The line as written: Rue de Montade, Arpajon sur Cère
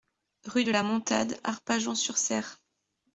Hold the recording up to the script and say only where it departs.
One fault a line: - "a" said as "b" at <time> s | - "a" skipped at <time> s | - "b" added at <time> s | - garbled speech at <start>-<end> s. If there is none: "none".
- "la" added at 0.7 s